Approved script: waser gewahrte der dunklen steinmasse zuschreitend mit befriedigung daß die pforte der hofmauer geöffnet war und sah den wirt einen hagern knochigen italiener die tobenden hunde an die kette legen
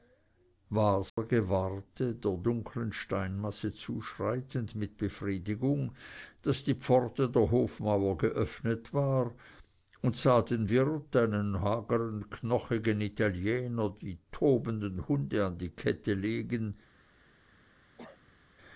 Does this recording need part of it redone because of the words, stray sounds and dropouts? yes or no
yes